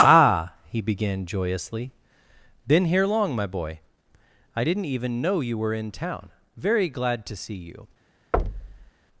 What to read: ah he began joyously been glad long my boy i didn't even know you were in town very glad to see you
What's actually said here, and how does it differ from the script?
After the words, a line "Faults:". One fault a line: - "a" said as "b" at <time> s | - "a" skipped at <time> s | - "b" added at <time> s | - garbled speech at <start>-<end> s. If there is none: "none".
ah he began joyously been here long my boy i didn't even know you were in town very glad to see you
Faults:
- "glad" said as "here" at 2.9 s